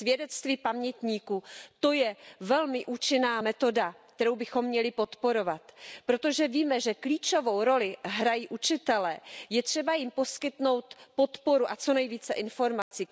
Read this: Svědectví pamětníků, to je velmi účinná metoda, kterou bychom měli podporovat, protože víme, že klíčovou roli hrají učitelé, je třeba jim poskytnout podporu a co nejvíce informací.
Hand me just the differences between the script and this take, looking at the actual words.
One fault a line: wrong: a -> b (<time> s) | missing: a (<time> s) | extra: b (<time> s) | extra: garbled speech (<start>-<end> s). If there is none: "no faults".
no faults